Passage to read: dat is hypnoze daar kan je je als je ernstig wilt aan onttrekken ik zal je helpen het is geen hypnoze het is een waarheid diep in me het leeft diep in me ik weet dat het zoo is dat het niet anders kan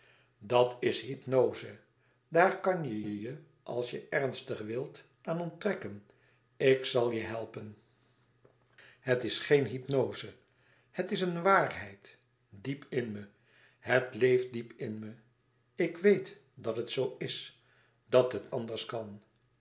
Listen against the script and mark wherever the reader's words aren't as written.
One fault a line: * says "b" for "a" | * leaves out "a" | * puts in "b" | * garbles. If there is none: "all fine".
* puts in "je"
* leaves out "niet"